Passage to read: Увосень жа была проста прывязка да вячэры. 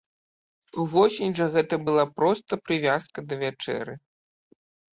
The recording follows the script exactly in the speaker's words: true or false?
false